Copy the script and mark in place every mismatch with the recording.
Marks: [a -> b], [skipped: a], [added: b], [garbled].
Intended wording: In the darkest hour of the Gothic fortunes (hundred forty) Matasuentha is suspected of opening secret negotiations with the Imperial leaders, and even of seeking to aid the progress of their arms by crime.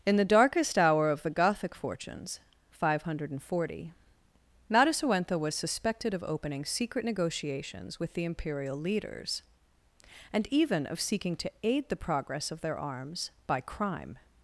In the darkest hour of the Gothic fortunes [added: five] (hundred forty) Matasuentha [is -> was] suspected of opening secret negotiations with the Imperial leaders, and even of seeking to aid the progress of their arms by crime.